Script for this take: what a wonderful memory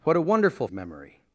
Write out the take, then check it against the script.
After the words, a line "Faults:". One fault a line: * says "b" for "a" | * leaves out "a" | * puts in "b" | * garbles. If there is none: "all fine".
what a wonderful memory
Faults:
all fine